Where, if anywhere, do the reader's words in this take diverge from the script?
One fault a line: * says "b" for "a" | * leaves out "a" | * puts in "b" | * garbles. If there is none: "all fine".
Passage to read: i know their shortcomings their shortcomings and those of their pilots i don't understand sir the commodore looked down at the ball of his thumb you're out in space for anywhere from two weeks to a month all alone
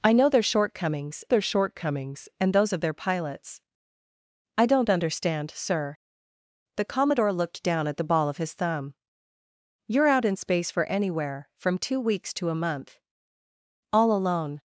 all fine